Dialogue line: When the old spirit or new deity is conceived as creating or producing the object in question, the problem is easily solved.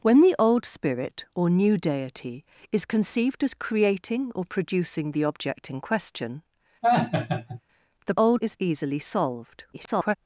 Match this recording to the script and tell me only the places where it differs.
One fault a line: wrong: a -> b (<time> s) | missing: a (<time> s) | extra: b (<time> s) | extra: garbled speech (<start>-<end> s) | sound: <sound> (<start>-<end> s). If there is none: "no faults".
sound: laugh (6.8-7.6 s)
wrong: problem -> old (8.2 s)
extra: garbled speech (9.7-10.2 s)